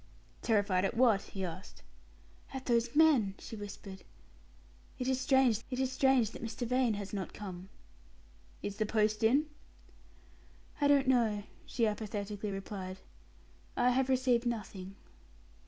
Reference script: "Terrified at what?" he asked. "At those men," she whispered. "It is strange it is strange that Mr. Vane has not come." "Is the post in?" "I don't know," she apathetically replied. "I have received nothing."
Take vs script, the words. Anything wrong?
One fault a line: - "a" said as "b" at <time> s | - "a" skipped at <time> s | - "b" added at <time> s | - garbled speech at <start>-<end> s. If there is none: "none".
none